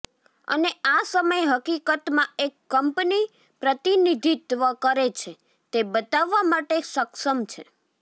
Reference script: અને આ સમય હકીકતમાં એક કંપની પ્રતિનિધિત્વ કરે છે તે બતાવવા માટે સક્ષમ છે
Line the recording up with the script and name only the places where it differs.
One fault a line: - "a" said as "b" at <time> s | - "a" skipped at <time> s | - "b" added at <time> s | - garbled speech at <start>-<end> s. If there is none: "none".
none